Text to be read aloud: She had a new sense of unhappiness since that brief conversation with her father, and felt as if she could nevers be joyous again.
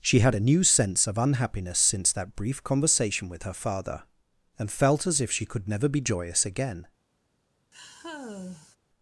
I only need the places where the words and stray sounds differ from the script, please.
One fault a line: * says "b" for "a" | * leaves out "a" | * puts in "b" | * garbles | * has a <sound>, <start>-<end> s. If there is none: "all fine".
* says "never" for "nevers"
* has a sigh, 7.7-8.8 s